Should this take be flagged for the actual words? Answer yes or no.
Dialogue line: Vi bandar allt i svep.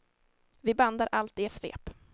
no